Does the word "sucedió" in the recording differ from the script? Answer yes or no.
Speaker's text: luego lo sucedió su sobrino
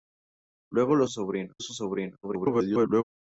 yes